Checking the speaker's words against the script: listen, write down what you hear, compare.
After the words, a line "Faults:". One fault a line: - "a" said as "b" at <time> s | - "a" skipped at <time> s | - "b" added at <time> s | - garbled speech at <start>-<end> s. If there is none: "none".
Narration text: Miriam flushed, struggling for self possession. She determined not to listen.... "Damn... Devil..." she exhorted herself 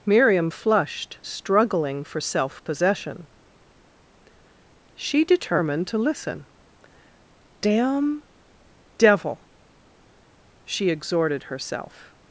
Miriam flushed, struggling for self possession. She determined to listen.... "Damn... Devil..." she exhorted herself
Faults:
- "not" skipped at 5.9 s